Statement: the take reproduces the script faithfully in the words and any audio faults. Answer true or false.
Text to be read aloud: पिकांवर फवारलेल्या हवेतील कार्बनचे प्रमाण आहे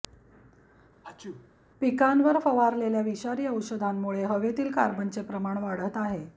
false